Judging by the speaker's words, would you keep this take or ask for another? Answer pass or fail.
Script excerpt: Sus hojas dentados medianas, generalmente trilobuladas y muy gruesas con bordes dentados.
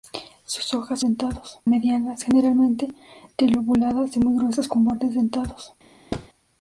pass